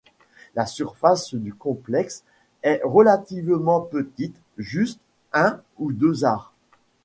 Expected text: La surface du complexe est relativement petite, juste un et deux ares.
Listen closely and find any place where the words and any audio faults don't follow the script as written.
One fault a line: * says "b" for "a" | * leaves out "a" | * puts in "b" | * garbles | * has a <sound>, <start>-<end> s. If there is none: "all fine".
* says "ou" for "et"